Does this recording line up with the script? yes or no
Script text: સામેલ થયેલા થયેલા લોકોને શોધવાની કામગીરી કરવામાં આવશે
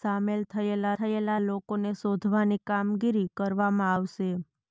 yes